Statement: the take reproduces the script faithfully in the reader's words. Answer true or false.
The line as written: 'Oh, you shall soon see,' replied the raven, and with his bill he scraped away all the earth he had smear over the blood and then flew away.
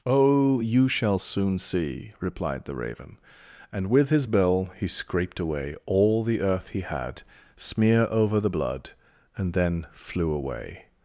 true